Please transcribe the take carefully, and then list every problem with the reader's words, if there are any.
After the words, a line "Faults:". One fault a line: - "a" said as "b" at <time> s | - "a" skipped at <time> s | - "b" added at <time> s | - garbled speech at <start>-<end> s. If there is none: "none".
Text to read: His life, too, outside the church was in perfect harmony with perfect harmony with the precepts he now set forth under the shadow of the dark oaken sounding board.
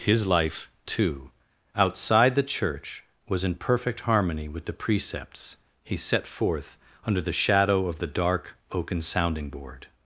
His life, too, outside the church was in perfect harmony with the precepts he set forth under the shadow of the dark oaken sounding board.
Faults:
- "perfect harmony with" skipped at 4.7 s
- "now" skipped at 6.0 s